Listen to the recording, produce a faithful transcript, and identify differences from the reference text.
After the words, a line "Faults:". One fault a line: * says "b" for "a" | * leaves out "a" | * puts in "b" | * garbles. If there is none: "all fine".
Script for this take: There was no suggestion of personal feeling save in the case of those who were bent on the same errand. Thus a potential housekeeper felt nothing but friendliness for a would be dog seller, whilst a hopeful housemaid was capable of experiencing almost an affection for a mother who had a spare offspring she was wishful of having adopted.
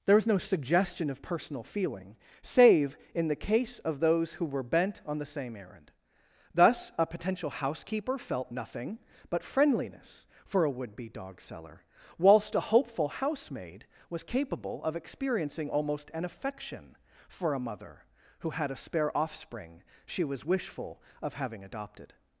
There was no suggestion of personal feeling save in the case of those who were bent on the same errand. Thus a potential housekeeper felt nothing but friendliness for a would be dog seller, whilst a hopeful housemaid was capable of experiencing almost an affection for a mother who had a spare offspring she was wishful of having adopted.
Faults:
all fine